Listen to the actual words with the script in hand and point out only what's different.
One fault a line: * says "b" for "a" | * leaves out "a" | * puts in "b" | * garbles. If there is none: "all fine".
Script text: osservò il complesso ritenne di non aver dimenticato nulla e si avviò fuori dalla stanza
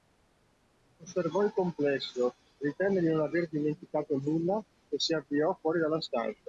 all fine